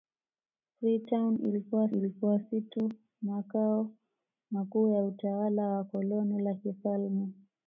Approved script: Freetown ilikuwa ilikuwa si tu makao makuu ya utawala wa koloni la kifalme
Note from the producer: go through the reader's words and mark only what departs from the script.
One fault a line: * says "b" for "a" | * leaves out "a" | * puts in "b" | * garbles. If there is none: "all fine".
all fine